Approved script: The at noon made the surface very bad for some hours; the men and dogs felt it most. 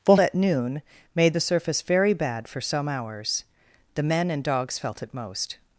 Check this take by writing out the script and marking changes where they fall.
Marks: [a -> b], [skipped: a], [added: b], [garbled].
The at noon made the surface very bad for some hours; the men and dogs felt it most.